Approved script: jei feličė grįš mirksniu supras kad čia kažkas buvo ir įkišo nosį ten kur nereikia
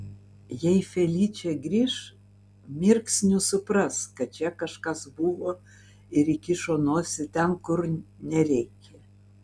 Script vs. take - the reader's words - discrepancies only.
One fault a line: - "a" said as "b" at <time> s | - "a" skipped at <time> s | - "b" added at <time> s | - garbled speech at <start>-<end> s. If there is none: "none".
none